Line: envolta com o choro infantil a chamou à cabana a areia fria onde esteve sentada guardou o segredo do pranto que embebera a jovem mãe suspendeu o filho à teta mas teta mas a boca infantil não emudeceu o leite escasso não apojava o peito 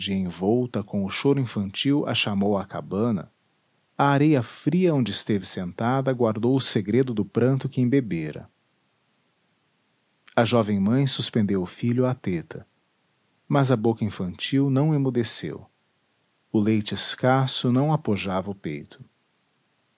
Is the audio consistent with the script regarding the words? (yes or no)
no